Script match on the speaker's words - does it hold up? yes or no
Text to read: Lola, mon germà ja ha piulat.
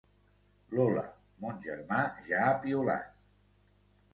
yes